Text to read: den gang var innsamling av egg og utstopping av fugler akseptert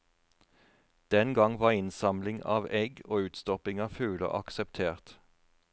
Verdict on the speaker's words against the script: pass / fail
pass